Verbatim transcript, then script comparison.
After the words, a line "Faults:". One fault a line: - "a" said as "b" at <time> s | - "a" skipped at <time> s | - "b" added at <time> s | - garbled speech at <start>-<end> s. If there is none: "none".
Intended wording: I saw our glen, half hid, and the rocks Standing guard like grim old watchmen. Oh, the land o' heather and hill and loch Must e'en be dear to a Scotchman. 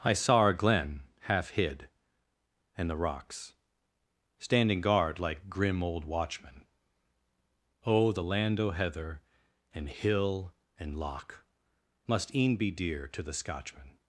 I saw our glen, half hid, and the rocks Standing guard like grim old watchmen. Oh, the land o' heather and hill and loch Must e'en be dear to the Scotchman.
Faults:
- "a" said as "the" at 13.2 s